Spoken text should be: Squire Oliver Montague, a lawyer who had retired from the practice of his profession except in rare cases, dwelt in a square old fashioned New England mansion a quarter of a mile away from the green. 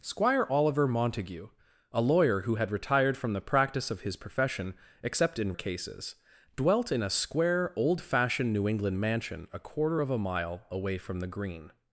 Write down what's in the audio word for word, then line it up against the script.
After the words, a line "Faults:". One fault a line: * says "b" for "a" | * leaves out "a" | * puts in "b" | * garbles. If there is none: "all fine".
Squire Oliver Montague, a lawyer who had retired from the practice of his profession except in cases, dwelt in a square old fashioned New England mansion a quarter of a mile away from the green.
Faults:
* leaves out "rare"